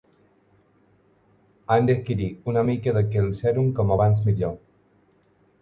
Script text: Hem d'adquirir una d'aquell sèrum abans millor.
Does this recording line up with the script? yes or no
no